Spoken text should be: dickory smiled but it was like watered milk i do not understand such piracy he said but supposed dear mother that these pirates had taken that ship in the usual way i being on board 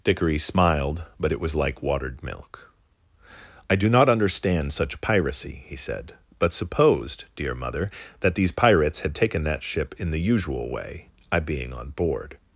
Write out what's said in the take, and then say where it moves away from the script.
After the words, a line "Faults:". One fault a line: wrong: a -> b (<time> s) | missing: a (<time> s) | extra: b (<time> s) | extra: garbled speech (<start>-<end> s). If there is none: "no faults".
dickory smiled but it was like watered milk i do not understand such piracy he said but supposed dear mother that these pirates had taken that ship in the usual way i being on board
Faults:
no faults